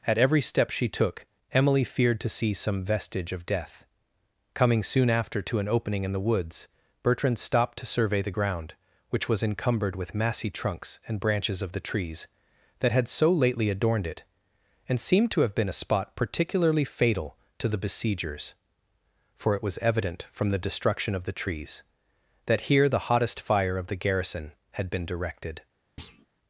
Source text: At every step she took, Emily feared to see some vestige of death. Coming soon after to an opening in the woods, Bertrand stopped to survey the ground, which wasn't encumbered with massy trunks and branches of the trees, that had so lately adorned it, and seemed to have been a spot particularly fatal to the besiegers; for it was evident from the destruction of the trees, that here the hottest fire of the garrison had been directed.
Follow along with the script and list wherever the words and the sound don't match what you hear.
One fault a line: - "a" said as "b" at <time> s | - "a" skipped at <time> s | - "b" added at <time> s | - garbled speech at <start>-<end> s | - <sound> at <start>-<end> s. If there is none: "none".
- "wasn't" said as "was" at 9.3 s
- thud at 26.0-26.3 s